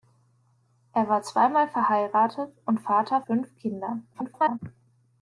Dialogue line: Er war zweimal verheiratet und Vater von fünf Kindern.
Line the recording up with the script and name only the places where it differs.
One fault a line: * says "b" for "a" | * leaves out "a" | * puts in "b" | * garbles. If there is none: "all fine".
* leaves out "von"
* garbles